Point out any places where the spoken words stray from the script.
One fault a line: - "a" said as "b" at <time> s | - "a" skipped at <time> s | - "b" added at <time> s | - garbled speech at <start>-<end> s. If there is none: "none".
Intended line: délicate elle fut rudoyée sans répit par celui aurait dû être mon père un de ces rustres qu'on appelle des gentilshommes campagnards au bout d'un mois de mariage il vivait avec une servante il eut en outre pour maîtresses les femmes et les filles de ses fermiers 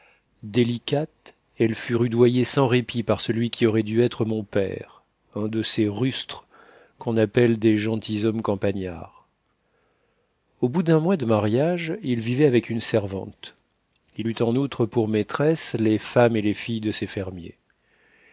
- "qui" added at 3.5 s